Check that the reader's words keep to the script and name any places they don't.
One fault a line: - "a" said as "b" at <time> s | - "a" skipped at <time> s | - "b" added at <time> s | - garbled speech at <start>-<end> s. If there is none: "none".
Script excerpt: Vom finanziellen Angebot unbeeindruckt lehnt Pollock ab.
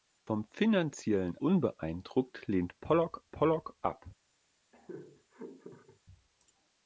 - "Angebot" skipped at 1.4 s
- "Pollock" added at 3.3 s